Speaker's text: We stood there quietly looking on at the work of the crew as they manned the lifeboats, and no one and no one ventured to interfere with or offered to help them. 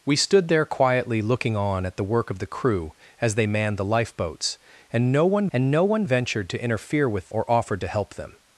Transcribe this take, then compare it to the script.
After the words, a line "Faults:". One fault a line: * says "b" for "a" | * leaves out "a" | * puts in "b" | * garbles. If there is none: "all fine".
We stood there quietly looking on at the work of the crew as they manned the lifeboats, and no one and no one ventured to interfere with or offered to help them.
Faults:
all fine